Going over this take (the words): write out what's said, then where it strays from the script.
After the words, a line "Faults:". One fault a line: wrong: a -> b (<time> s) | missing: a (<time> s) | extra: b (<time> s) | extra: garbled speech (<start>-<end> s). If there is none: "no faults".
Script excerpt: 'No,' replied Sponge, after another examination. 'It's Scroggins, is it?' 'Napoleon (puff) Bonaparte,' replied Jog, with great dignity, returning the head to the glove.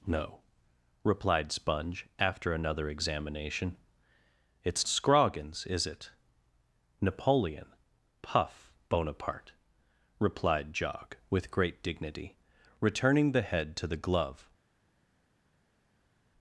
'No,' replied Sponge, after another examination. 'It's Scroggins, is it?' 'Napoleon (puff) Bonaparte,' replied Jog, with great dignity, returning the head to the glove.
Faults:
no faults